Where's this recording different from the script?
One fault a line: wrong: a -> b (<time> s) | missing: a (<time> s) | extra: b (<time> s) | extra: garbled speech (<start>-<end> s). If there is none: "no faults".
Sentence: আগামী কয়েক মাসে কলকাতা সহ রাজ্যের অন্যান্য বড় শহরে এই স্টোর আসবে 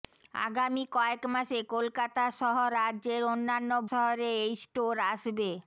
missing: বড় (3.7 s)